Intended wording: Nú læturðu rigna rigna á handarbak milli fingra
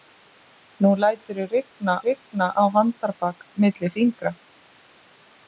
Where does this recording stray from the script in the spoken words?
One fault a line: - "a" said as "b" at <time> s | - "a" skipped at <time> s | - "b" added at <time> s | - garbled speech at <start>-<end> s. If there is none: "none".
none